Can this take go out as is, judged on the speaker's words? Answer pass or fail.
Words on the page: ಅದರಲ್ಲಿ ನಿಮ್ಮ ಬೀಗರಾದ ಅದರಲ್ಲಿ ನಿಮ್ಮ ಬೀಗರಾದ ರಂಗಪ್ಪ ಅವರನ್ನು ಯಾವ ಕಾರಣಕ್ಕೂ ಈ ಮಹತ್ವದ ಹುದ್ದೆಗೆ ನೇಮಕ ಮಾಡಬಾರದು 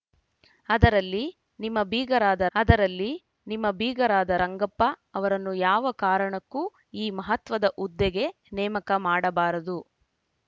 pass